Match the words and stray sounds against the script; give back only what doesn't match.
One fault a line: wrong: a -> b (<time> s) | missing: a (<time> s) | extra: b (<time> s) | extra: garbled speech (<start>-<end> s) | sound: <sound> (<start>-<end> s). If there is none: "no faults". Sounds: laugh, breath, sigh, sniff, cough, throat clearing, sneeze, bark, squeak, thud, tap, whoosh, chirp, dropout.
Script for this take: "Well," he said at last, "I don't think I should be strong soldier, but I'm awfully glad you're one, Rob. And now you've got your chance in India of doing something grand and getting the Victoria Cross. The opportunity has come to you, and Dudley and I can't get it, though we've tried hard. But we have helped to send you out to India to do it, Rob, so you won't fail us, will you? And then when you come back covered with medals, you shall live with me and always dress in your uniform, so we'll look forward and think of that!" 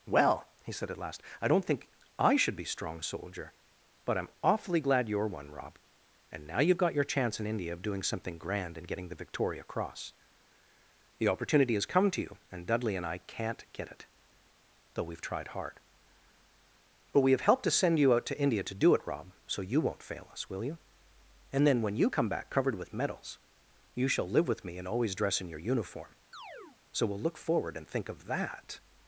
sound: chirp (26.3-26.8 s)